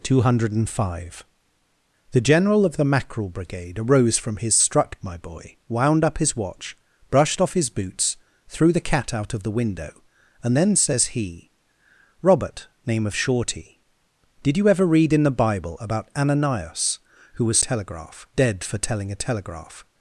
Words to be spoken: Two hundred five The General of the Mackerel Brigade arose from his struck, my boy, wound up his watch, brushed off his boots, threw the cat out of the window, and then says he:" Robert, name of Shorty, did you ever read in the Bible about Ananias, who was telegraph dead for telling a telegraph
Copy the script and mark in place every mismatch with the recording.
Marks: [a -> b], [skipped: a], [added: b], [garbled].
Two hundred five The General of the Mackerel Brigade arose from his struck, my boy, wound up his watch, brushed off his boots, threw the cat out of the window, and then says he:" Robert, name of Shorty, did you ever read in the Bible about Ananias, who was telegraph dead for telling a telegraph